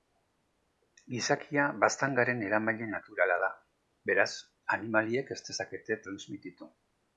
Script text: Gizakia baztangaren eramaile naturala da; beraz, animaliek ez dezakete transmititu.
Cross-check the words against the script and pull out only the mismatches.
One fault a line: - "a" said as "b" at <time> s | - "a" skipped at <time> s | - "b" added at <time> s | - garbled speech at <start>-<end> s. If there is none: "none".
none